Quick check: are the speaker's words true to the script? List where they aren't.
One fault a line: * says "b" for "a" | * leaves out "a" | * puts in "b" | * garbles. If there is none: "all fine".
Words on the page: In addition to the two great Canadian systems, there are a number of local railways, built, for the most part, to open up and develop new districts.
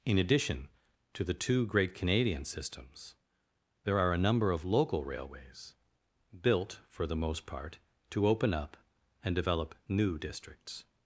all fine